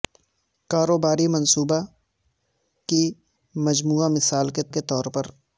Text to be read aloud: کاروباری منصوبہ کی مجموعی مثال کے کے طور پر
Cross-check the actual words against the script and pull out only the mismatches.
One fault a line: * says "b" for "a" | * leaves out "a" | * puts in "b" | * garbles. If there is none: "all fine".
all fine